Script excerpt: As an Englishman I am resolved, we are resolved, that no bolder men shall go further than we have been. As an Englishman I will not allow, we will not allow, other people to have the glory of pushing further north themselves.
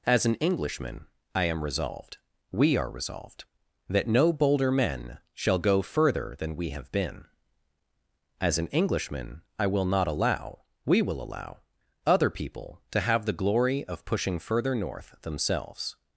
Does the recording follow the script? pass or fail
fail